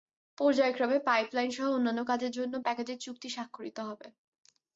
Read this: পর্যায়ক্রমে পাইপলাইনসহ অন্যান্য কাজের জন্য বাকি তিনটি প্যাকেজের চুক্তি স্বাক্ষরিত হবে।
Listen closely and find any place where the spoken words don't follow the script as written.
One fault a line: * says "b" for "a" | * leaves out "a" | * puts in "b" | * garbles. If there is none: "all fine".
* leaves out "বাকি তিনটি"